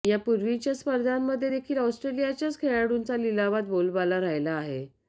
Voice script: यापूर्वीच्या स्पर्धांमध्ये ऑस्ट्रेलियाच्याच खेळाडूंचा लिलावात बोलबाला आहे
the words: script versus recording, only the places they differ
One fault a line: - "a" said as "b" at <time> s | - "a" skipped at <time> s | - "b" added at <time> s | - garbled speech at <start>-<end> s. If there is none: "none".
- "देखील" added at 1.5 s
- "राहिला" added at 4.2 s